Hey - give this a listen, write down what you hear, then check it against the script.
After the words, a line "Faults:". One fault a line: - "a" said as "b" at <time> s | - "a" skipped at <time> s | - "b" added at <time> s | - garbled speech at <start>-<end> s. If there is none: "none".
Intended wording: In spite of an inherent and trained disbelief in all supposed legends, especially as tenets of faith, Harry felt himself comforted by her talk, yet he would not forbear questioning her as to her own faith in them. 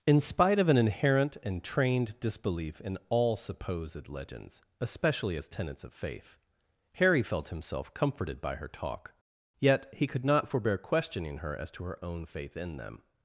In spite of an inherent and trained disbelief in all supposed legends, especially as tenets of faith, Harry felt himself comforted by her talk, yet he could not forbear questioning her as to her own faith in them.
Faults:
- "would" said as "could" at 10.1 s